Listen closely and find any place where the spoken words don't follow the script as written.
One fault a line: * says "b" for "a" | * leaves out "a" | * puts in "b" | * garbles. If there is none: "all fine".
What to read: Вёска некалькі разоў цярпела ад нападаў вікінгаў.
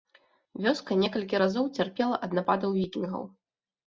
all fine